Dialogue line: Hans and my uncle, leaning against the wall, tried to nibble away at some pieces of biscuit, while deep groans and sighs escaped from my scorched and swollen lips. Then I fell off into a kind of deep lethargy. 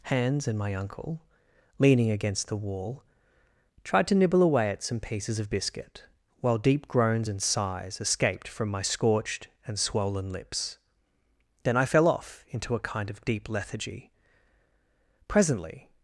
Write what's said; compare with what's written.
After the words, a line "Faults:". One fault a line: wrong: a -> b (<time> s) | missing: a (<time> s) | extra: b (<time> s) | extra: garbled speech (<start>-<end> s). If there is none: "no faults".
Hans and my uncle, leaning against the wall, tried to nibble away at some pieces of biscuit, while deep groans and sighs escaped from my scorched and swollen lips. Then I fell off into a kind of deep lethargy. Presently
Faults:
extra: Presently (15.3 s)